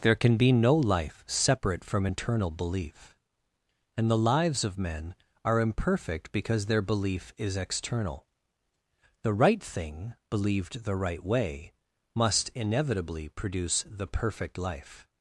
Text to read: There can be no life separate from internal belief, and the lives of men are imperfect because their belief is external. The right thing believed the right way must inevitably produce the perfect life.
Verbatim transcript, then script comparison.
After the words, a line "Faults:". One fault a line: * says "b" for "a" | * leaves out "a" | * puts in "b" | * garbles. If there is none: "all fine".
There can be no life separate from internal belief, and the lives of men are imperfect because their belief is external. The right thing believed the right way must inevitably produce the perfect life.
Faults:
all fine